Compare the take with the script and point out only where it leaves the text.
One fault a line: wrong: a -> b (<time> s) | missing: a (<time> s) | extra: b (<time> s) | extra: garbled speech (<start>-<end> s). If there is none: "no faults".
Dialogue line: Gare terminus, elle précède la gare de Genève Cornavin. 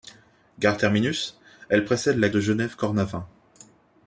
missing: gare (2.3 s)